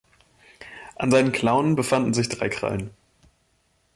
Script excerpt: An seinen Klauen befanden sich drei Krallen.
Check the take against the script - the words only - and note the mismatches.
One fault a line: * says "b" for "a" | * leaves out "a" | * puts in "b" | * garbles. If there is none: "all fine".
all fine